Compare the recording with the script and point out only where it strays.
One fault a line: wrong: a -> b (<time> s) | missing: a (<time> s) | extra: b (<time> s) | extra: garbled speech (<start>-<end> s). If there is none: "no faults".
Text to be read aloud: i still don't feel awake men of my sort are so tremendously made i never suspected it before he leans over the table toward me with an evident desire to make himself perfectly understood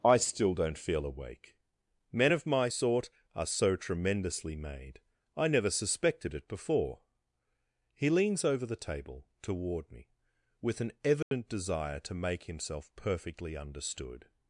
no faults